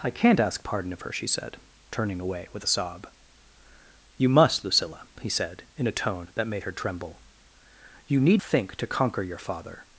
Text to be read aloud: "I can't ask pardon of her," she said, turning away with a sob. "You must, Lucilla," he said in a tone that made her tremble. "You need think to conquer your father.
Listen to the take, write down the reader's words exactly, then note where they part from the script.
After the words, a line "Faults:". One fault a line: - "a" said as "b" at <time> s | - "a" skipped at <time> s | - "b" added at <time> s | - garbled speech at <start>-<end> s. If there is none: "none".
"I can't ask pardon of her," she said, turning away with a sob. "You must, Lucilla," he said in a tone that made her tremble. "You need think to conquer your father.
Faults:
none